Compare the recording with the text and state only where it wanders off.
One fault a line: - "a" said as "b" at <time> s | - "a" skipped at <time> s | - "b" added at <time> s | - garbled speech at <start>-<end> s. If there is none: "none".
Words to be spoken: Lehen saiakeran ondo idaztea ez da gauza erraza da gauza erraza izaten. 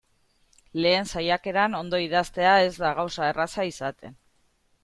- "da gauza erraza" skipped at 3.7 s